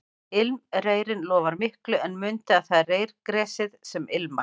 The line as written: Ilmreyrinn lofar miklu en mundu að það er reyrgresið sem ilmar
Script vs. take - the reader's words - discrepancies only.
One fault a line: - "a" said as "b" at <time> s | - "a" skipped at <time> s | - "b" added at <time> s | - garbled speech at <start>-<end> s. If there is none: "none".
none